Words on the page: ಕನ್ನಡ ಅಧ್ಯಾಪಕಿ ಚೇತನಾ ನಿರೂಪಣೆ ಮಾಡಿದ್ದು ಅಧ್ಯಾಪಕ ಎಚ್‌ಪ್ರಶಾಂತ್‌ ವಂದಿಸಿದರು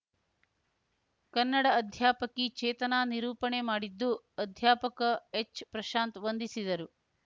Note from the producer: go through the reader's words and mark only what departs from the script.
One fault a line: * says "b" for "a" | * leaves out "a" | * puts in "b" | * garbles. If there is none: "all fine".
all fine